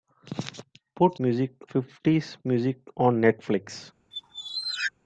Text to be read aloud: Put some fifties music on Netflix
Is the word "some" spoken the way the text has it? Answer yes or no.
no